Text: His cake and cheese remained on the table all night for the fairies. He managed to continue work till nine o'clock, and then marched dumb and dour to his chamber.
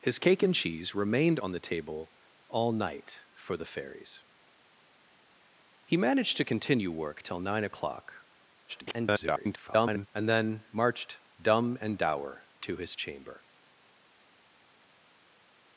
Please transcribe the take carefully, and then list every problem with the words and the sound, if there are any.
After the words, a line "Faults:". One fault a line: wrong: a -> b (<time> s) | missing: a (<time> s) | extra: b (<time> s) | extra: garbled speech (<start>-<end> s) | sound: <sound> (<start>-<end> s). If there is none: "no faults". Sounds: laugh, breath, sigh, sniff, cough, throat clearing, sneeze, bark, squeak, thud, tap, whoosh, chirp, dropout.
His cake and cheese remained on the table all night for the fairies. He managed to continue work till nine o'clock, [garbled] and then marched dumb and dour to his chamber.
Faults:
extra: garbled speech (8.7-10.1 s)